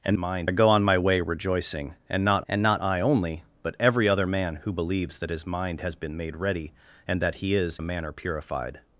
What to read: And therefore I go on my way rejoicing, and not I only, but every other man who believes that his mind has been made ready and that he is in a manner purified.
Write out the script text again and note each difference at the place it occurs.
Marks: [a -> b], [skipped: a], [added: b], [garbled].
And [therefore -> mind] I go on my way rejoicing, and not [added: and not] I only, but every other man who believes that his mind has been made ready and that he is [skipped: in] a manner purified.